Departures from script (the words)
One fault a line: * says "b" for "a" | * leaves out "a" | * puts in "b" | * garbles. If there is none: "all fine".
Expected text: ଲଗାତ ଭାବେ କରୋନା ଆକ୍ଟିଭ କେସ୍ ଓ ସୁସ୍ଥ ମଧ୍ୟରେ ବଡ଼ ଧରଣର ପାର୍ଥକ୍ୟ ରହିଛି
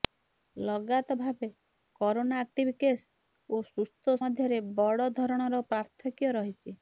all fine